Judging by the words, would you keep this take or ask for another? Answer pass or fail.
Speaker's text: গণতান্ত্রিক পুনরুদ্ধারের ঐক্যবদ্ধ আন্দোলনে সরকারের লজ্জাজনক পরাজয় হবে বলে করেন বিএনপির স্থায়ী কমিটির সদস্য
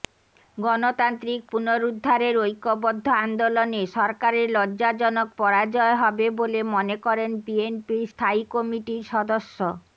fail